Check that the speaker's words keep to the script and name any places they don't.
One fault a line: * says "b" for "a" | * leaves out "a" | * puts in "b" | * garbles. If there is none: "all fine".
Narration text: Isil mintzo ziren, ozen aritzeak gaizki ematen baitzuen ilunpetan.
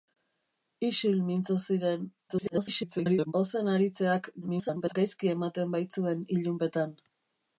* garbles
* garbles